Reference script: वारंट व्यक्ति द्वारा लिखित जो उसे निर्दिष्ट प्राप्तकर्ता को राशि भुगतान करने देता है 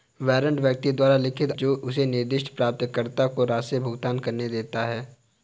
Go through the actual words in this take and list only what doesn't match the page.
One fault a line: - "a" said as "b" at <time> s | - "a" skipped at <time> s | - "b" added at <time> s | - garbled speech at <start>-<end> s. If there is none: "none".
none